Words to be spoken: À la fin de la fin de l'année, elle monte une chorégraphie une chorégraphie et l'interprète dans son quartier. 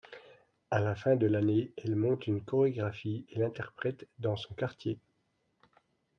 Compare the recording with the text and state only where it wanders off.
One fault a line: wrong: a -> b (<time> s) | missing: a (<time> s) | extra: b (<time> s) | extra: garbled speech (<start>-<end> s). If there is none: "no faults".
missing: la fin de (1.3 s)
missing: une chorégraphie (3.3 s)